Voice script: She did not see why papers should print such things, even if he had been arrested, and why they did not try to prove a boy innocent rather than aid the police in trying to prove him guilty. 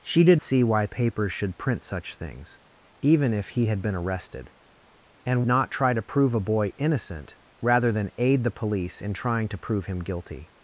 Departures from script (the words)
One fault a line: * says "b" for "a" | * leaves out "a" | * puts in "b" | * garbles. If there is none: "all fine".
* leaves out "not"
* leaves out "why they did"